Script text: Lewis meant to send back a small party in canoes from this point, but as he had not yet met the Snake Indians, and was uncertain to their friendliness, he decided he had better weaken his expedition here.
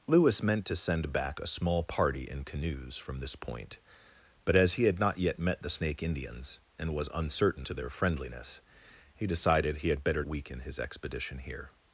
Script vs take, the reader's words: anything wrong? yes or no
no